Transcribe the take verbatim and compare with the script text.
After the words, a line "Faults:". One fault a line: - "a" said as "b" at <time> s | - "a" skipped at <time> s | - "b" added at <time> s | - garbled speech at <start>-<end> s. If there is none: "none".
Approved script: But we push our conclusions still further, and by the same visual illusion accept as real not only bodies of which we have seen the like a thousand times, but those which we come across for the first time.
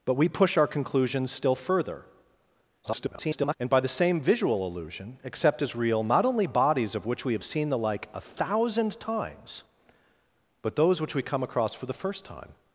But we push our conclusions still further, [garbled] and by the same visual illusion accept as real not only bodies of which we have seen the like a thousand times, but those which we come across for the first time.
Faults:
- garbled speech at 2.8-3.5 s